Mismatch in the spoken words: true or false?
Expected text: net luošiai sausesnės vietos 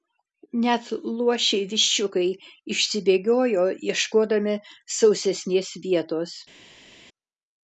true